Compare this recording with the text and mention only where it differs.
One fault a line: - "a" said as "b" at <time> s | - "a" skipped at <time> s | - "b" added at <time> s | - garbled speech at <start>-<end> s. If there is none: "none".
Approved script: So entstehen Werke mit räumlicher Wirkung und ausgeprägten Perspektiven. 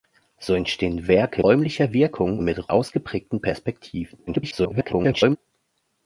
- "mit" skipped at 1.4 s
- "und" said as "mit" at 2.4 s
- garbled speech at 4.3-5.4 s